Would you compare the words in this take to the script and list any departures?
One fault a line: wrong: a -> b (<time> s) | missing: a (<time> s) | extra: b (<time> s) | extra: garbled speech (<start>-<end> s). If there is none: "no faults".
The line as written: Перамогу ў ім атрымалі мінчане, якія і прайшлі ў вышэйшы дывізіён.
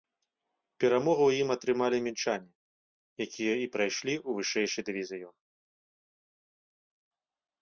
no faults